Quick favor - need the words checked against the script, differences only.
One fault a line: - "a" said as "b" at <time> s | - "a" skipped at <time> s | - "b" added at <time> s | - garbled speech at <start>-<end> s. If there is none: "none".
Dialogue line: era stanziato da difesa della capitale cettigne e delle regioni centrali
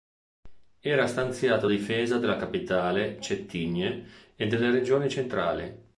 - "da" skipped at 1.7 s